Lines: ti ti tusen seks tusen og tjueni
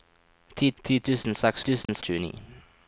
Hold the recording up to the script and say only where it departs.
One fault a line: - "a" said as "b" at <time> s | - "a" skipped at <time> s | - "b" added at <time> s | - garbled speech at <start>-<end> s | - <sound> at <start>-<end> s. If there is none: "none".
- dropout at 1.9-1.9 s